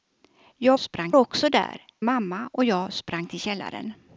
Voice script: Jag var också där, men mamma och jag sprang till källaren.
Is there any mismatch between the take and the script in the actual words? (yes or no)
yes